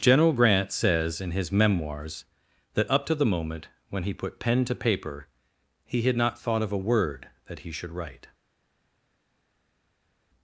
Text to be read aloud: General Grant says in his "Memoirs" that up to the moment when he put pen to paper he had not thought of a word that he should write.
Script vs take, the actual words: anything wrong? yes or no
no